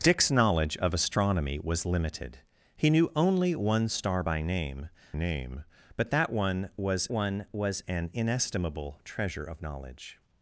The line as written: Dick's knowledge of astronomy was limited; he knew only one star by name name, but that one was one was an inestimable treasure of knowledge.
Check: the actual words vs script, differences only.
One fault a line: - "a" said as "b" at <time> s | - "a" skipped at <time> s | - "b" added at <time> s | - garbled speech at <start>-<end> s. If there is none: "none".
none